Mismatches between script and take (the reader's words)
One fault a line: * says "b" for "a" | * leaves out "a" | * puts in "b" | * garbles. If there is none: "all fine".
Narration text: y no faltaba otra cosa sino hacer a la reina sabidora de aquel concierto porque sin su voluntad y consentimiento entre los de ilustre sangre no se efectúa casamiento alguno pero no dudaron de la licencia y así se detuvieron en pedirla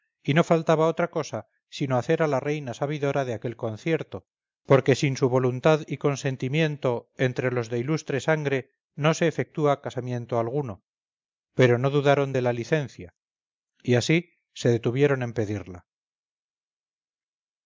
all fine